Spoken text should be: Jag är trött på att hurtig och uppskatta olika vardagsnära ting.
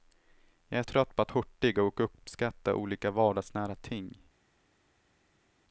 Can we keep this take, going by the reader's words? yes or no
yes